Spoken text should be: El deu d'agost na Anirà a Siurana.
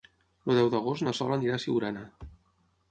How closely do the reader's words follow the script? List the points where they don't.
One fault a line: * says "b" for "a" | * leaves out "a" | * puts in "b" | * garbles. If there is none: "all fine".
* puts in "Sol"